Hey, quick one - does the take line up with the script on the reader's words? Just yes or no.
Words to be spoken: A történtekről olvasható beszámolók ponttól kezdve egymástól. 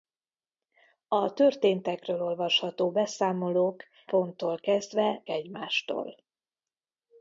yes